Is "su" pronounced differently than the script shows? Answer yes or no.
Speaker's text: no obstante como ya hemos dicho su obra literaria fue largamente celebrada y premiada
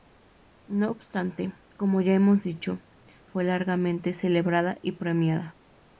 yes